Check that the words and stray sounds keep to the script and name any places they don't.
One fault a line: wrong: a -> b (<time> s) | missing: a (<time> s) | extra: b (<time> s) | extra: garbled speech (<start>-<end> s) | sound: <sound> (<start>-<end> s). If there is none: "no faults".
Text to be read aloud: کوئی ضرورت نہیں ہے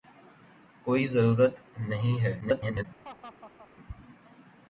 extra: garbled speech (2.4-2.8 s)
sound: laugh (3.0-3.7 s)